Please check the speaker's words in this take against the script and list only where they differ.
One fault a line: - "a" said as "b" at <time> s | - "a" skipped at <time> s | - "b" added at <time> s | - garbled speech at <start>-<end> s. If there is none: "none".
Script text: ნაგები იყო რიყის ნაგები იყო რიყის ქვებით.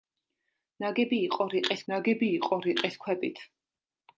none